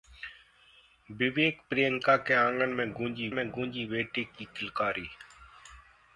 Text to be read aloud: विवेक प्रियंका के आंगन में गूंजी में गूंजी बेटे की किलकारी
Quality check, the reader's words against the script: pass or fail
pass